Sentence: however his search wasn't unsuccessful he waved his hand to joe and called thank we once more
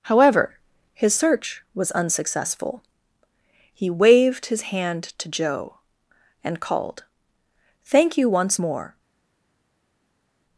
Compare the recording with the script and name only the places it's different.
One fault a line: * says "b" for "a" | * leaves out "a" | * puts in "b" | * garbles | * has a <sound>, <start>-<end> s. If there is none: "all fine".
* says "was" for "wasn't"
* says "you" for "we"